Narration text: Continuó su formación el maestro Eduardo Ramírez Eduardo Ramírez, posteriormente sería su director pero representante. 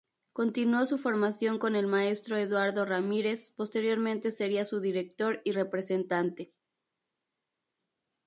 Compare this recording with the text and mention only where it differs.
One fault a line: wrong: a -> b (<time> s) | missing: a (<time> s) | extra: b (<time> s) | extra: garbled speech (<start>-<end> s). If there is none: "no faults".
extra: con (1.6 s)
missing: Eduardo Ramírez (3.5 s)
wrong: pero -> y (5.4 s)